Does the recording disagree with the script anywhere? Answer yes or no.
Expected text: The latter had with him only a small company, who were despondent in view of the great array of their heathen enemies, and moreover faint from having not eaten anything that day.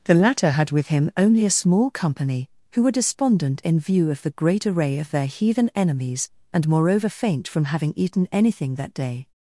yes